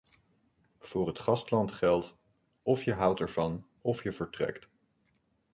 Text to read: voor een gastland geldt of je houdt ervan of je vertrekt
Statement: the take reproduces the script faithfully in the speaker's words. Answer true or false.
false